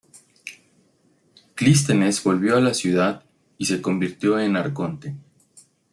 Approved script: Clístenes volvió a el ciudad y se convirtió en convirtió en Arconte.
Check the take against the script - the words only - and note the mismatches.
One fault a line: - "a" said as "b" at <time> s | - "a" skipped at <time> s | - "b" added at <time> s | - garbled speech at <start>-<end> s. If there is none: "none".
- "el" said as "la" at 2.6 s
- "convirtió en" skipped at 4.6 s